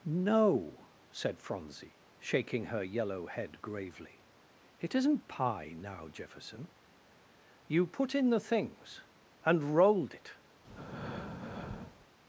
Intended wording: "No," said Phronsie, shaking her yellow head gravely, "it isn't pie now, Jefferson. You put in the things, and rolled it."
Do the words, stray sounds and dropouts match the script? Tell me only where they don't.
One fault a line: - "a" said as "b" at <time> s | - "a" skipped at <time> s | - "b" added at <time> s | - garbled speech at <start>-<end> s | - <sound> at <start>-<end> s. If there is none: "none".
- breath at 10.6-12.1 s